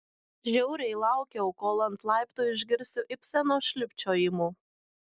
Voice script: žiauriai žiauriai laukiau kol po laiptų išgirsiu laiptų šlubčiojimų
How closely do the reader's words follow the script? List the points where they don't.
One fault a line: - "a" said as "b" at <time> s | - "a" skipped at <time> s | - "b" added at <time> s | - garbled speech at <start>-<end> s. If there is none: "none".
- "žiauriai" skipped at 0.9 s
- "po" said as "ant" at 1.9 s
- "laiptų" said as "ibseno" at 3.2 s